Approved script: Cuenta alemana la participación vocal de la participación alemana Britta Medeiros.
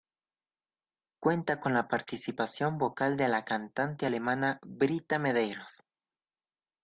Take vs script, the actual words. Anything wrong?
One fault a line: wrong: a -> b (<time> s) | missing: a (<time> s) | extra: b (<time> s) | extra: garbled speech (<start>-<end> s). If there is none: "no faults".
wrong: alemana -> con (1.6 s)
wrong: participación -> cantante (3.5 s)